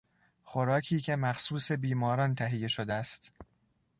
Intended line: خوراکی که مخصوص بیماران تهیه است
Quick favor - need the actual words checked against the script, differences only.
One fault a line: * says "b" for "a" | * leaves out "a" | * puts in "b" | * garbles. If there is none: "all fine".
* puts in "شده"